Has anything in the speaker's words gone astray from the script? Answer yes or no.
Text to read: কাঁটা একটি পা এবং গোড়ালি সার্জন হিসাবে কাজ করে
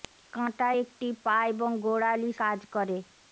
yes